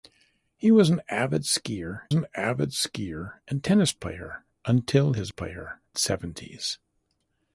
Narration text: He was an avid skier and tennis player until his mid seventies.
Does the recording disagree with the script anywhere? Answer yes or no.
yes